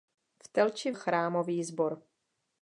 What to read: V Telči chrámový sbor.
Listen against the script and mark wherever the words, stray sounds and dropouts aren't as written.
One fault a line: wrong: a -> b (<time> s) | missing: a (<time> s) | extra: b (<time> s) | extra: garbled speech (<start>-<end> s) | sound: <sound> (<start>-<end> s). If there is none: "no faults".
no faults